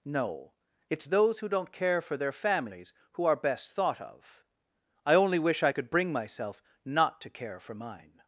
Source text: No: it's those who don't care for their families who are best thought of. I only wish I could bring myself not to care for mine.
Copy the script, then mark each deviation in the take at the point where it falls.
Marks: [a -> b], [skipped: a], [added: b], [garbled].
No: it's those who don't care for their families who are best thought of. I only wish I could bring myself not to care for mine.